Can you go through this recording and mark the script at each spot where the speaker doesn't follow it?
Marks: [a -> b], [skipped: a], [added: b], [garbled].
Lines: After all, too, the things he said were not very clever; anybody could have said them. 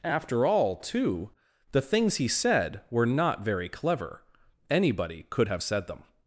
After all, too, the things he said were not very clever; anybody could have said them.